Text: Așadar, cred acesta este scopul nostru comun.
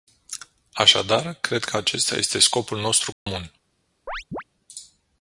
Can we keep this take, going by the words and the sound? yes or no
no